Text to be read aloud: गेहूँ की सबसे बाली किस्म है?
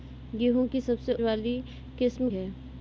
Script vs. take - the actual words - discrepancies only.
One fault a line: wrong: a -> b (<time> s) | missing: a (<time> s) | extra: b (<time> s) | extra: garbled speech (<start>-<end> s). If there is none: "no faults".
no faults